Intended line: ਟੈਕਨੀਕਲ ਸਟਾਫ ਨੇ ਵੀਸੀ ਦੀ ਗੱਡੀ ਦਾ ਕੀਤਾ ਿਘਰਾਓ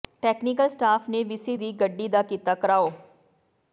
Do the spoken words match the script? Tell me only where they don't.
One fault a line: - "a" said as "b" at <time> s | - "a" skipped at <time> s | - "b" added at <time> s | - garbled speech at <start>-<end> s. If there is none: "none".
none